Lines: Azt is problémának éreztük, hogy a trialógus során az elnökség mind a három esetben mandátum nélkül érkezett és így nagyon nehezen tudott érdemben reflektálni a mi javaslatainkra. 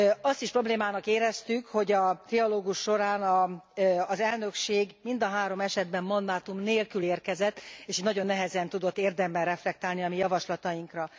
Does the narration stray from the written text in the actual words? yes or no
no